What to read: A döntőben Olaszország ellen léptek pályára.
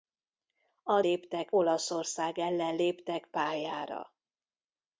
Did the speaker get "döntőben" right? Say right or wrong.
wrong